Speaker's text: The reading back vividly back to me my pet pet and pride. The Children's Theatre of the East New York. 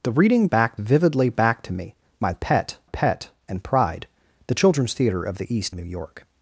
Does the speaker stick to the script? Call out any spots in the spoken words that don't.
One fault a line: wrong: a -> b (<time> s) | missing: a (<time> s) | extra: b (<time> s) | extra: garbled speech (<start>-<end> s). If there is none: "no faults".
no faults